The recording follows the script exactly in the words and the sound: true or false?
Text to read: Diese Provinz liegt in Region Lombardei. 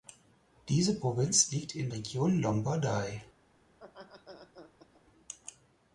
false